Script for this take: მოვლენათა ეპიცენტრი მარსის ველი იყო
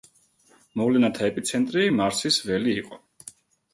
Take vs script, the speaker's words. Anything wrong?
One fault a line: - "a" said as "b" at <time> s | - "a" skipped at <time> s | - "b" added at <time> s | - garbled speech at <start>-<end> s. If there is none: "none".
none